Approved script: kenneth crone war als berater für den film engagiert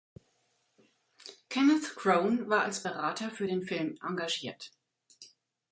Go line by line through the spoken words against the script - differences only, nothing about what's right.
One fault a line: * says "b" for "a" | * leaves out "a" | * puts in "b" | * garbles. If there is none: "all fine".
all fine